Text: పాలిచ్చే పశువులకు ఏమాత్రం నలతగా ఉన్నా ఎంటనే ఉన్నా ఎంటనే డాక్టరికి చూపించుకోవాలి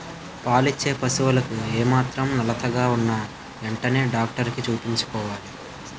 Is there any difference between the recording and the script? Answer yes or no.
yes